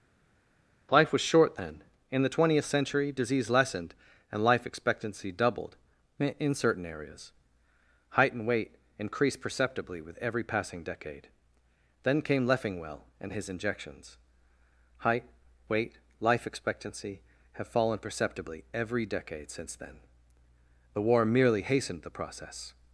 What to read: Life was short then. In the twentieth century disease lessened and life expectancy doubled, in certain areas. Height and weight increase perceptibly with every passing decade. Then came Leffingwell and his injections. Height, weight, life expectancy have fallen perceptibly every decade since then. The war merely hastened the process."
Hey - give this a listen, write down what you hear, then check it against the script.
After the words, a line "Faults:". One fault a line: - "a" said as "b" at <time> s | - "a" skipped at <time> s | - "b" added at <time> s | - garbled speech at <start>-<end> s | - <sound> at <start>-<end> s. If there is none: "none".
Life was short then. In the twentieth century disease lessened and life expectancy doubled, in certain areas. Height and weight increased perceptibly with every passing decade. Then came Leffingwell and his injections. Height, weight, life expectancy have fallen perceptibly every decade since then. The war merely hastened the process."
Faults:
- "increase" said as "increased" at 9.0 s